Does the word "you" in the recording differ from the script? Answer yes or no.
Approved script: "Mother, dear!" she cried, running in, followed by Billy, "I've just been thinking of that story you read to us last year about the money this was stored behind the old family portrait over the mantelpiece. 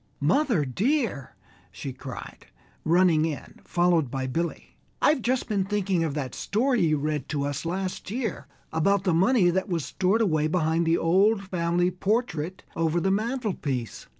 no